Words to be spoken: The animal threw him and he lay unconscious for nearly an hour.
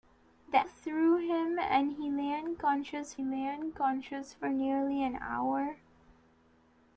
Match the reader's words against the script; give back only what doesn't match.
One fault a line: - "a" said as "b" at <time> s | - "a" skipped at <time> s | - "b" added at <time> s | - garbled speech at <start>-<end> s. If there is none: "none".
- "animal" skipped at 0.7 s
- "lay unconscious" added at 3.2 s